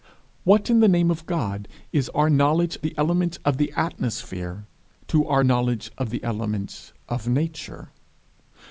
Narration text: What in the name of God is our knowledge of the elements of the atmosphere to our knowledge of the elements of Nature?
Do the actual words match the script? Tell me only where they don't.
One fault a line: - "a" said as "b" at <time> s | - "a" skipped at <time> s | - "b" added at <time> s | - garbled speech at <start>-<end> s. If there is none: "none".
- "of" skipped at 2.8 s